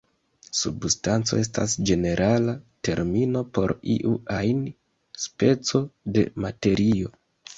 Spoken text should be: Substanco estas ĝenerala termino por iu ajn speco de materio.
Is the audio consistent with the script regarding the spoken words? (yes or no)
yes